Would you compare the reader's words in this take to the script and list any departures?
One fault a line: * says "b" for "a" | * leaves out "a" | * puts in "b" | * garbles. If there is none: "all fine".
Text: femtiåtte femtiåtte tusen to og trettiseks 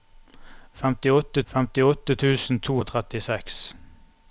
all fine